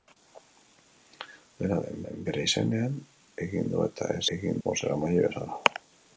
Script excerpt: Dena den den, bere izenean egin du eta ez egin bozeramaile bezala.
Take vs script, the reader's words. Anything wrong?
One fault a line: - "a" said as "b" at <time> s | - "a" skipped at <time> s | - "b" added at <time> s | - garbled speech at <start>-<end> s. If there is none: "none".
none